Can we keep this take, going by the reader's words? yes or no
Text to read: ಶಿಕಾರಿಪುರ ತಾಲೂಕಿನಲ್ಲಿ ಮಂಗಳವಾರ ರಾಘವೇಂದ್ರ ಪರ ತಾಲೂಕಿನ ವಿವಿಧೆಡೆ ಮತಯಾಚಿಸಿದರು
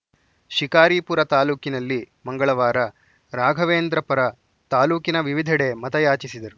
yes